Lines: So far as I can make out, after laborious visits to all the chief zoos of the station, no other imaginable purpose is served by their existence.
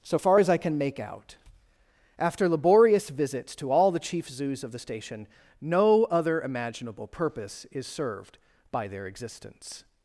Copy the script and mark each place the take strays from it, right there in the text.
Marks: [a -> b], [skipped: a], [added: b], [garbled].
So far as I can make out, after laborious visits to all the chief zoos of the station, no other imaginable purpose is served by their existence.